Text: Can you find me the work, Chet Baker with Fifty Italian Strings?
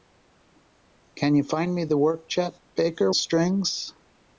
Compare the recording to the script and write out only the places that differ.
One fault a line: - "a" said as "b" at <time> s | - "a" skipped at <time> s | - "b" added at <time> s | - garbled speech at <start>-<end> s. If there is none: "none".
- "with Fifty Italian" skipped at 3.1 s